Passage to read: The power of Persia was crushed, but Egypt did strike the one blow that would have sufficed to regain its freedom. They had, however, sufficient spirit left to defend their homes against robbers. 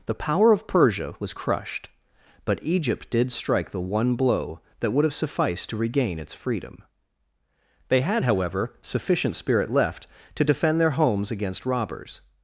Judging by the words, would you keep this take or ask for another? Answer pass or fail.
pass